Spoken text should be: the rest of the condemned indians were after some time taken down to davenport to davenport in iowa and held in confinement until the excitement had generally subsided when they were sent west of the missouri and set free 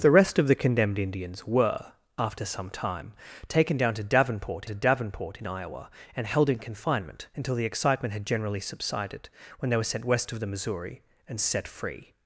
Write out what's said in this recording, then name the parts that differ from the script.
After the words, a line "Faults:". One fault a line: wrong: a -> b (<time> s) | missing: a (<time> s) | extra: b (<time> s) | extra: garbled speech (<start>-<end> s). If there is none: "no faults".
the rest of the condemned indians were after some time taken down to davenport to davenport in iowa and held in confinement until the excitement had generally subsided when they were sent west of the missouri and set free
Faults:
no faults